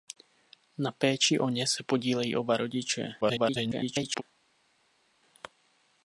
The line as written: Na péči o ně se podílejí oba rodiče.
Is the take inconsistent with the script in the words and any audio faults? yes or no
yes